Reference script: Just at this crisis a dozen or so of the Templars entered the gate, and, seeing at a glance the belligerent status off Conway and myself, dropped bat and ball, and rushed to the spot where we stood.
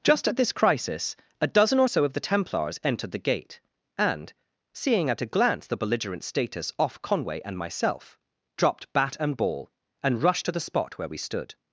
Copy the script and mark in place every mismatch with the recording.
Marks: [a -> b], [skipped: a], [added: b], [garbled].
Just at this crisis a dozen or so of the Templars entered the gate, and, seeing at a glance the belligerent status off Conway and myself, dropped bat and ball, and rushed to the spot where we stood.